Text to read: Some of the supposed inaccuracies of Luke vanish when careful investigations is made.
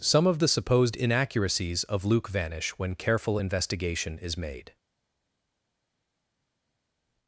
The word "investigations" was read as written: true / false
false